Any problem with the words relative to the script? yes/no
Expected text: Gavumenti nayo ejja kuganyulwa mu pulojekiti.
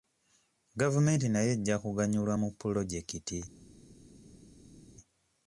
no